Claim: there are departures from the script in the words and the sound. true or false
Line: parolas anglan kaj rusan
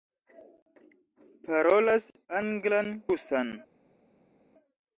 true